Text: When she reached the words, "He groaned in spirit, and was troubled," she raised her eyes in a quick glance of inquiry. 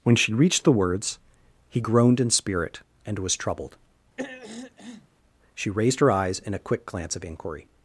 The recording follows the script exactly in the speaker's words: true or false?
true